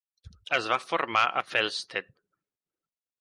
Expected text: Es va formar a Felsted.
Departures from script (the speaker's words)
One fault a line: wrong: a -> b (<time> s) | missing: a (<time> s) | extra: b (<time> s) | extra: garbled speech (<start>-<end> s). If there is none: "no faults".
no faults